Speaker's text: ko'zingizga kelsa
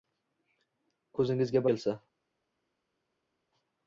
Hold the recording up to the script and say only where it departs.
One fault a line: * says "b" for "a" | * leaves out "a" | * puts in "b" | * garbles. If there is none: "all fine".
all fine